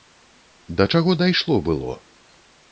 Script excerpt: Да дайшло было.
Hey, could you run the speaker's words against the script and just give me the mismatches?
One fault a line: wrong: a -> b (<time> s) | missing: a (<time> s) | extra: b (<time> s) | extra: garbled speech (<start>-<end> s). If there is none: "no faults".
extra: чаго (0.9 s)